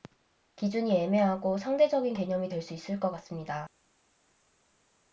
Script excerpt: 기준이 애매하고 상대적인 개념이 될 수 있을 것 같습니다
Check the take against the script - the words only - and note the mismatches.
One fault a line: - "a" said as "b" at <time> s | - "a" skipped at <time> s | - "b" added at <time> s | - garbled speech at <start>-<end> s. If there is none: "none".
none